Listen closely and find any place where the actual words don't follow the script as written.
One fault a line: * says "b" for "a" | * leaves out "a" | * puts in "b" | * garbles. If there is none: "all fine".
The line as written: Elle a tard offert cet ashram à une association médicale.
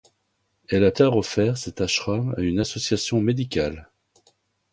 all fine